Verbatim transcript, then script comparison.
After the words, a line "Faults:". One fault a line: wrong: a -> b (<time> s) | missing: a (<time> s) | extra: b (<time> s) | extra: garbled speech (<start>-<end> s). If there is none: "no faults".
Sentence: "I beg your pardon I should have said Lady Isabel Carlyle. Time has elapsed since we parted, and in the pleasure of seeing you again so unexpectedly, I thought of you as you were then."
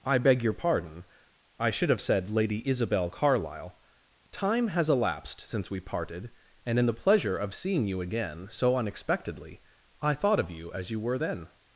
"I beg your pardon I should have said Lady Isabel Carlyle. Time has elapsed since we parted, and in the pleasure of seeing you again so unexpectedly, I thought of you as you were then."
Faults:
no faults